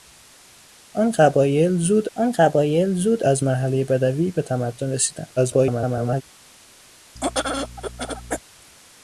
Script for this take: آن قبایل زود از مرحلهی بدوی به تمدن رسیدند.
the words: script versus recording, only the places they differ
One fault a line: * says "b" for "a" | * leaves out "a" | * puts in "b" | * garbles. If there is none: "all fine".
* puts in "آن قبایل زود"
* garbles